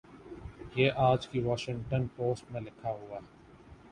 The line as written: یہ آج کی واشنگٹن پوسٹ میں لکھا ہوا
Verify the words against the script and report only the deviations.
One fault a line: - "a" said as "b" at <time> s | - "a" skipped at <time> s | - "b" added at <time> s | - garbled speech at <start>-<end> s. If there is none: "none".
none